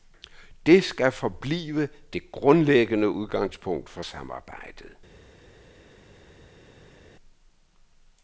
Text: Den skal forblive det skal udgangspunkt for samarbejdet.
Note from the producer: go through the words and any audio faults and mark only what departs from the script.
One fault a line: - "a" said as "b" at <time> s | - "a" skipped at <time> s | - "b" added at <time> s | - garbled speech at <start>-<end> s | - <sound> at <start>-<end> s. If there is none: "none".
- "Den" said as "Det" at 0.7 s
- "skal" said as "grundlæggende" at 2.3 s